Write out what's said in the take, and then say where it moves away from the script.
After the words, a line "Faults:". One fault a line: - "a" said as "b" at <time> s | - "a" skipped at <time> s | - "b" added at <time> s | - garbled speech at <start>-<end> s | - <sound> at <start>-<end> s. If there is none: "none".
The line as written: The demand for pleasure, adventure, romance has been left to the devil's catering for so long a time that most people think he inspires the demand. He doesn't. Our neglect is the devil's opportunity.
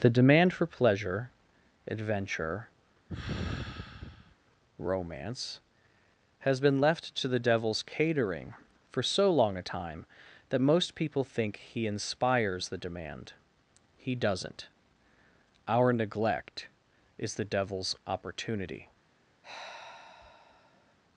The demand for pleasure, adventure, romance has been left to the devil's catering for so long a time that most people think he inspires the demand. He doesn't. Our neglect is the devil's opportunity.
Faults:
- sigh at 3.1-4.4 s
- sigh at 19.4-20.9 s